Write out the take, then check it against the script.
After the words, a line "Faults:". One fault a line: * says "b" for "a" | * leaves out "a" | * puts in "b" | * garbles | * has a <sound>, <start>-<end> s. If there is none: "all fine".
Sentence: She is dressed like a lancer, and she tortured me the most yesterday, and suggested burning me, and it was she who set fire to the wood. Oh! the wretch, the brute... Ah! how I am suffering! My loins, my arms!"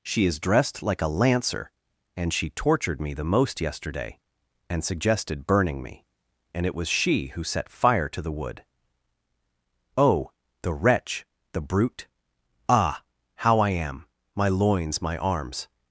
She is dressed like a lancer, and she tortured me the most yesterday, and suggested burning me, and it was she who set fire to the wood. Oh! the wretch, the brute... Ah! how I am! My loins, my arms!"
Faults:
* leaves out "suffering"